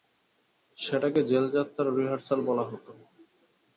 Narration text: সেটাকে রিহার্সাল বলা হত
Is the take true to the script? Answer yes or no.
no